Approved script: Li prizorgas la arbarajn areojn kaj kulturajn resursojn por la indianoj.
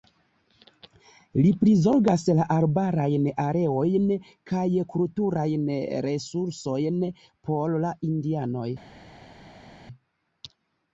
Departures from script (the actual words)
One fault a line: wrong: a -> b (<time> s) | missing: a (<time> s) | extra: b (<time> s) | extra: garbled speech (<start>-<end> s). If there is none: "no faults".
no faults